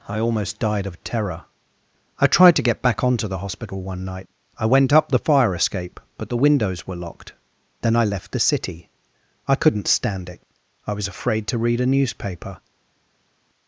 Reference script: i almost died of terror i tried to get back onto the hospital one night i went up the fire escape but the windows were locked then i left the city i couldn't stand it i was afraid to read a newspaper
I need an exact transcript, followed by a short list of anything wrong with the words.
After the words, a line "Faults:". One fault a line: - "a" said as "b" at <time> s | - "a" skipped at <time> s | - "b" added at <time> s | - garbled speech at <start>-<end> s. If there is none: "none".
i almost died of terror i tried to get back onto the hospital one night i went up the fire escape but the windows were locked then i left the city i couldn't stand it i was afraid to read a newspaper
Faults:
none